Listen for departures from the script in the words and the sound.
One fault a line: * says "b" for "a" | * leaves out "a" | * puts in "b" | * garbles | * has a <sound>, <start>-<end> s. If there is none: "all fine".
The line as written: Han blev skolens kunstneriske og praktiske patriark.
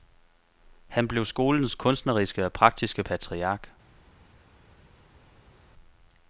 all fine